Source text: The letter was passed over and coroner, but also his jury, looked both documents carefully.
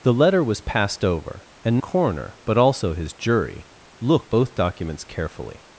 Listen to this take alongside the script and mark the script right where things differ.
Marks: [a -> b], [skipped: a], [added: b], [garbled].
The letter was passed over and coroner, but also his jury, looked both documents carefully.